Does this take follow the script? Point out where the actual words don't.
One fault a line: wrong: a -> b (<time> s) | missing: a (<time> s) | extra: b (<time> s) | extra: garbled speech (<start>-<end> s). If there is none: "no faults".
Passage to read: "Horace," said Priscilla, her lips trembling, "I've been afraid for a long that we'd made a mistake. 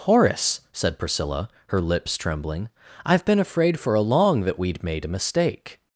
no faults